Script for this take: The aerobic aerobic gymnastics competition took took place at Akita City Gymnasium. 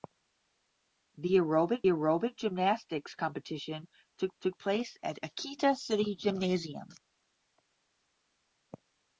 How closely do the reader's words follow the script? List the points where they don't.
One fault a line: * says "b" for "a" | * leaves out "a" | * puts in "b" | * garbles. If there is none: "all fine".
all fine